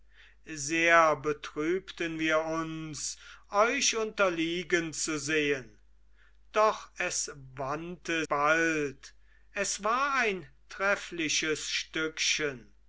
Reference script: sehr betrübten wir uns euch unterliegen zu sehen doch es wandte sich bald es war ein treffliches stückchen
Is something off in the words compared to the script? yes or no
yes